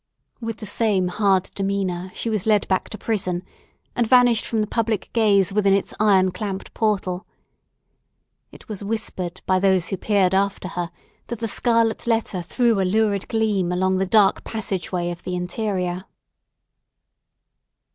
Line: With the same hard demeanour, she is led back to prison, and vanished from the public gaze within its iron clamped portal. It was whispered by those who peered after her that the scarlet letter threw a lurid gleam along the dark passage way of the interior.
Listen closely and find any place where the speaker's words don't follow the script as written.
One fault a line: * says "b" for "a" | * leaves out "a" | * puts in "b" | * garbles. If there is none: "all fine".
* says "was" for "is"